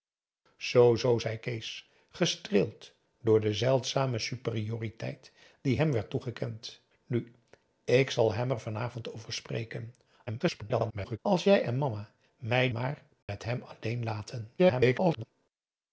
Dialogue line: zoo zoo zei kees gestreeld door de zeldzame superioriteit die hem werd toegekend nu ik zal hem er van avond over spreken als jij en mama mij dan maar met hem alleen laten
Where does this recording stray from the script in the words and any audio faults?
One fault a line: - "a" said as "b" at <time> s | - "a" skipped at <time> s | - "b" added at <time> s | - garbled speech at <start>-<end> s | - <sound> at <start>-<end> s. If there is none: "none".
- garbled speech at 10.3-11.2 s
- "dan" skipped at 12.7 s
- dropout at 13.2-13.3 s
- garbled speech at 14.6-15.3 s